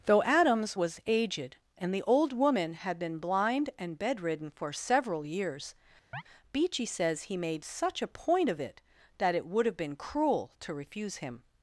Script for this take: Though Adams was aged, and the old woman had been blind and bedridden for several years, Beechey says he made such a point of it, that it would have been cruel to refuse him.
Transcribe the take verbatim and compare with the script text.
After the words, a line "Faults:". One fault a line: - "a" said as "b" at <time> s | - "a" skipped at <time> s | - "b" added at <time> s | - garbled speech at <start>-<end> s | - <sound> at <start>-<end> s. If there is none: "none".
Though Adams was aged, and the old woman had been blind and bedridden for several years, Beechey says he made such a point of it, that it would have been cruel to refuse him.
Faults:
- chirp at 6.1-6.2 s